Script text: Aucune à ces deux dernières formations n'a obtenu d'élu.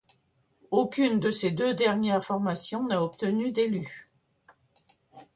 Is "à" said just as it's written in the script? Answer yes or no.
no